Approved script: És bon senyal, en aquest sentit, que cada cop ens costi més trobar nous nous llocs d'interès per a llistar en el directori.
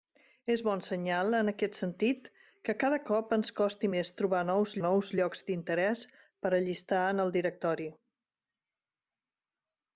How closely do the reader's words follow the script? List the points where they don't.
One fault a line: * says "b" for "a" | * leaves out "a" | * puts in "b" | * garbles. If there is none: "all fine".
all fine